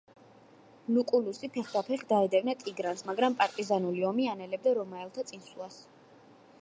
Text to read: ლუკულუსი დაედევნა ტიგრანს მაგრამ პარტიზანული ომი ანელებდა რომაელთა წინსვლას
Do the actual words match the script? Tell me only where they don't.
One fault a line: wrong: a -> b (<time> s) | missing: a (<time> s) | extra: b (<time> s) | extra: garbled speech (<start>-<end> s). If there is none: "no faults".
extra: ფეხდაფეხ (1.6 s)